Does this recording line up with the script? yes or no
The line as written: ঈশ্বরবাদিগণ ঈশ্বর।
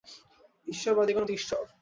yes